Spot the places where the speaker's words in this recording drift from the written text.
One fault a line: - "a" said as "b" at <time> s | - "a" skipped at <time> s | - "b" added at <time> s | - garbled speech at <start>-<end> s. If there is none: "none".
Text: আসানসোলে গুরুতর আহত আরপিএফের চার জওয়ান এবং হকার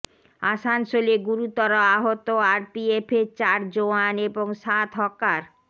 - "সাত" added at 4.6 s